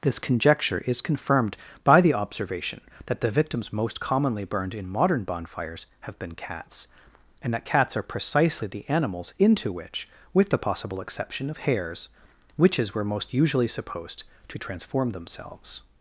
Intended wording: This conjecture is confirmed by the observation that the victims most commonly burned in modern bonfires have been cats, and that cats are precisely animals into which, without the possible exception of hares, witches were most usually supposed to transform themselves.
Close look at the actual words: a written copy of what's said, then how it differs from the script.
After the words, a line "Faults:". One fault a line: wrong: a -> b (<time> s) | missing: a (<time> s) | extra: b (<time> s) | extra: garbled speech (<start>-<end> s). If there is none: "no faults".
This conjecture is confirmed by the observation that the victims most commonly burned in modern bonfires have been cats, and that cats are precisely the animals into which, with the possible exception of hares, witches were most usually supposed to transform themselves.
Faults:
extra: the (8.7 s)
wrong: without -> with (10.3 s)